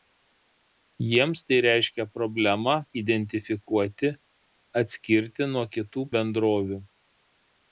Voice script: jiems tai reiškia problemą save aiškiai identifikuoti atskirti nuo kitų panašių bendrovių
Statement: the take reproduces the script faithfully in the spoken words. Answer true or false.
false